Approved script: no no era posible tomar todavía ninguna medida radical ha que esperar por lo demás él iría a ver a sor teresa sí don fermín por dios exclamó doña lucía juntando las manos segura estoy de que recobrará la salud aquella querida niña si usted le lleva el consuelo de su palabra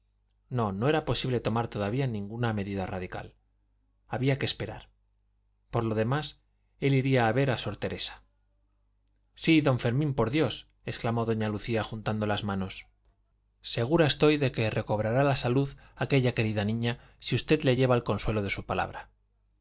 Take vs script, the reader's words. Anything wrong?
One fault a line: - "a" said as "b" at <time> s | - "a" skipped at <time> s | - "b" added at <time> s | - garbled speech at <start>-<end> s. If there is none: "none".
- "ha" said as "había" at 4.1 s